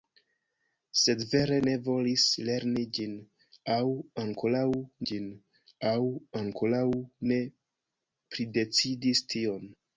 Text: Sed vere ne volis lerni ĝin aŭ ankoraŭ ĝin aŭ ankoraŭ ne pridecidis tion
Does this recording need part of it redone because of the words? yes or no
no